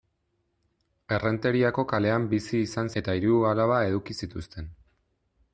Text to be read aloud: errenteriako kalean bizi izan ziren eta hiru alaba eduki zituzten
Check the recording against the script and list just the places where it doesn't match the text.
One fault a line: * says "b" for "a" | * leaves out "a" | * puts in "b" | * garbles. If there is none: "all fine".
* leaves out "ziren"